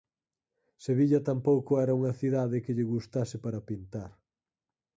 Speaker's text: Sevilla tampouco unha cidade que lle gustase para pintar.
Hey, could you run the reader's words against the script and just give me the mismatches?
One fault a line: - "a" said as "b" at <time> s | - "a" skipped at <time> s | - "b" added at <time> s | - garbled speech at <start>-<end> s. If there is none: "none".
- "era" added at 1.8 s